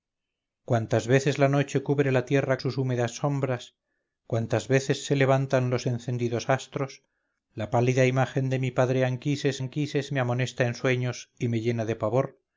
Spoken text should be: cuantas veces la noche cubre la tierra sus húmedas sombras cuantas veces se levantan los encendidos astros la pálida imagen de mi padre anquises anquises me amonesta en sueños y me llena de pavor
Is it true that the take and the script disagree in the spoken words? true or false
false